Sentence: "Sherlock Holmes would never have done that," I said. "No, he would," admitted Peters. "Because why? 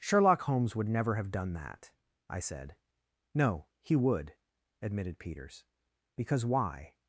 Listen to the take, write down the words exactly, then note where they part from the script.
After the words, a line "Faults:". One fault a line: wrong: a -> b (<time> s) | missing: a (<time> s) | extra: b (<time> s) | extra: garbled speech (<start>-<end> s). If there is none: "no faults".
"Sherlock Holmes would never have done that," I said. "No, he would," admitted Peters. "Because why?
Faults:
no faults